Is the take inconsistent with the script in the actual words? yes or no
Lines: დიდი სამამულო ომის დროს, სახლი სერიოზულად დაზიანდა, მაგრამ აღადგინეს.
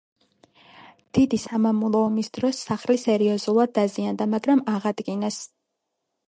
no